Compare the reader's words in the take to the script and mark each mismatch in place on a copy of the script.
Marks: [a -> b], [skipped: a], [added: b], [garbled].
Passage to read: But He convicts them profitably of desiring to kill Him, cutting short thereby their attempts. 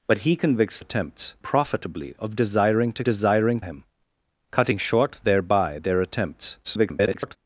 But He convicts [them -> attempts] profitably of desiring to [kill -> desiring] Him, cutting short thereby their attempts. [garbled]